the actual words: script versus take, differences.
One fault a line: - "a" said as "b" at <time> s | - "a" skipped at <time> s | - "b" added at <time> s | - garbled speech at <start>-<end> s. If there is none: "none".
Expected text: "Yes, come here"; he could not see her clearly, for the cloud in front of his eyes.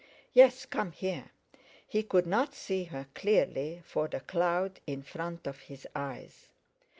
none